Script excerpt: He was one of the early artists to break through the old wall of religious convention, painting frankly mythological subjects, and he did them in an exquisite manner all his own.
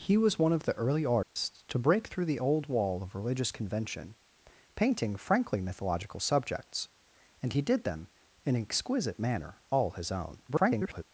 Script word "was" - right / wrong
right